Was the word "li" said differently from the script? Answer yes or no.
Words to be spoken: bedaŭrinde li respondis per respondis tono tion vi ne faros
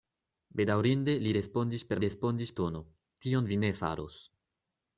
no